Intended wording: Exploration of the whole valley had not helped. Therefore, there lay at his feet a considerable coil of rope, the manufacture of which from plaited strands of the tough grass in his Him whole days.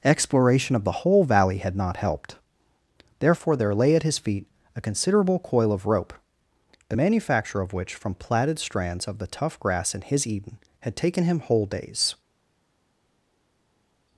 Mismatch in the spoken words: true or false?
true